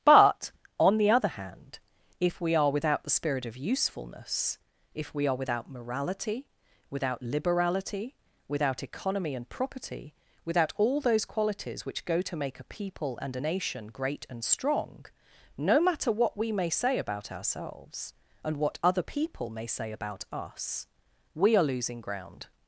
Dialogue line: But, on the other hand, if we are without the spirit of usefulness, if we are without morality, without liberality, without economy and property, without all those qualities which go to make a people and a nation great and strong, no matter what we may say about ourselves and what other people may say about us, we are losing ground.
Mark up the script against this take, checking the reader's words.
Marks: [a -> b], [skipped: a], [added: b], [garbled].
But, on the other hand, if we are without the spirit of usefulness, if we are without morality, without liberality, without economy and property, without all those qualities which go to make a people and a nation great and strong, no matter what we may say about ourselves and what other people may say about us, we are losing ground.